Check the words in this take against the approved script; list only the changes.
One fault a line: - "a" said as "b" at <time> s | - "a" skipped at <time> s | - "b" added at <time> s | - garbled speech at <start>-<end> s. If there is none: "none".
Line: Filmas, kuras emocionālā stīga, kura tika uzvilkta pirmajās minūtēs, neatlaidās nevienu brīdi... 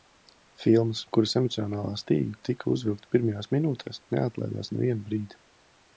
- "kura" skipped at 2.4 s